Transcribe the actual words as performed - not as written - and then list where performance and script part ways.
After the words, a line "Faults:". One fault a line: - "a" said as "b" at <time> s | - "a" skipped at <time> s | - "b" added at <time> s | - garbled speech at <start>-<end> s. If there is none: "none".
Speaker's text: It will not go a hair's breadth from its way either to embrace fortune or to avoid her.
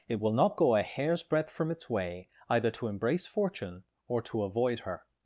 It will not go a hair's breadth from its way either to embrace fortune or to avoid her.
Faults:
none